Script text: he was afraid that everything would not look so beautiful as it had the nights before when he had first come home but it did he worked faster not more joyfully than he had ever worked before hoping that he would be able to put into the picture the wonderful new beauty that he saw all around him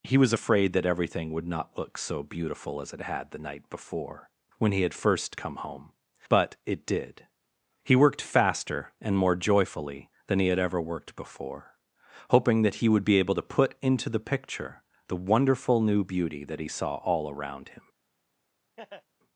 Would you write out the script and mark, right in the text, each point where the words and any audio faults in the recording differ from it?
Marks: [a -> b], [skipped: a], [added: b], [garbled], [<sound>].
he was afraid that everything would not look so beautiful as it had the [nights -> night] before when he had first come home but it did he worked faster [not -> and] more joyfully than he had ever worked before hoping that he would be able to put into the picture the wonderful new beauty that he saw all around him [laugh]